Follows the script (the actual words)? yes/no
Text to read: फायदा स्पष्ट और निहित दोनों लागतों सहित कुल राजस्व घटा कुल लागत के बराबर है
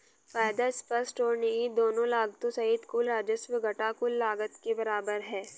yes